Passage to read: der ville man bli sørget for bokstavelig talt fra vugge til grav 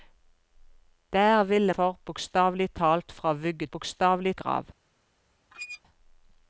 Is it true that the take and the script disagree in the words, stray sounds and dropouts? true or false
true